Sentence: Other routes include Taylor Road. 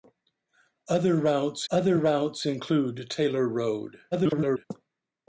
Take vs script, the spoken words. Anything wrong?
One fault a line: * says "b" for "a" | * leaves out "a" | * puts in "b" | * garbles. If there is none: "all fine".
* puts in "other routes"
* garbles